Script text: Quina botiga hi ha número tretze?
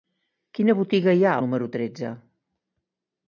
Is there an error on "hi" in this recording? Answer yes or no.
no